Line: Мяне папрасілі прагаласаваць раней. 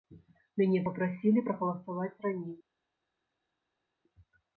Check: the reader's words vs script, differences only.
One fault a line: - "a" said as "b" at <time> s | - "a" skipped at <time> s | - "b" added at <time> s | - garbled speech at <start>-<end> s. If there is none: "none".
none